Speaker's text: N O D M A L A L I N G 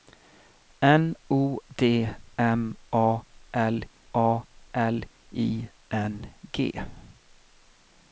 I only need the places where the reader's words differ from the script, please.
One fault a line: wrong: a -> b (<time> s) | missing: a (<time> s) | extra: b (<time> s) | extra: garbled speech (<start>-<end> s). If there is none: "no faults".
no faults